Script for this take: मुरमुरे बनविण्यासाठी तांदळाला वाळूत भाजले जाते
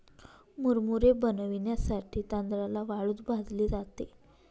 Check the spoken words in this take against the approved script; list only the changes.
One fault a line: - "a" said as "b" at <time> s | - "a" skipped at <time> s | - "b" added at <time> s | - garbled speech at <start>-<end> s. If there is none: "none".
none